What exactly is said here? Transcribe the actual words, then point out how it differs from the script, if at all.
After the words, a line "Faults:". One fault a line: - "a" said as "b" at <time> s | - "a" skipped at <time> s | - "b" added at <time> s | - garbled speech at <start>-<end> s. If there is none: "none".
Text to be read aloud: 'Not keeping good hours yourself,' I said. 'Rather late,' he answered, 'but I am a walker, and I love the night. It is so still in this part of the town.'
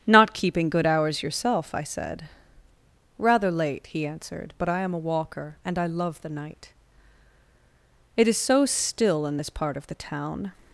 'Not keeping good hours yourself,' I said. 'Rather late,' he answered, 'but I am a walker, and I love the night. It is so still in this part of the town.'
Faults:
none